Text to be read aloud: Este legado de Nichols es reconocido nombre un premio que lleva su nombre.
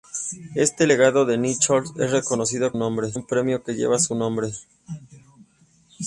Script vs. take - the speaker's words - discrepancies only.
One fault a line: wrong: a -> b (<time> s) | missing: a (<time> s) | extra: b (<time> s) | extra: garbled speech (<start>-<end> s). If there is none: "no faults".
no faults